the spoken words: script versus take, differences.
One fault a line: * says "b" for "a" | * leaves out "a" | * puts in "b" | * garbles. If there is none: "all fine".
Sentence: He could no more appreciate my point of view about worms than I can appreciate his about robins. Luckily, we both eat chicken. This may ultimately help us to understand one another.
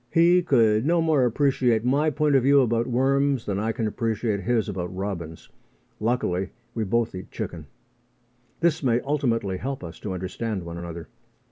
all fine